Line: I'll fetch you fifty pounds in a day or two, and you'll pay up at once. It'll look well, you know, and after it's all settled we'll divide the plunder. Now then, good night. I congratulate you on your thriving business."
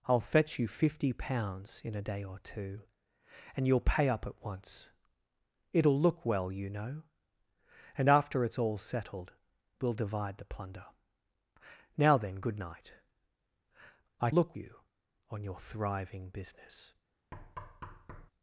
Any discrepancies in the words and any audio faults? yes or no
yes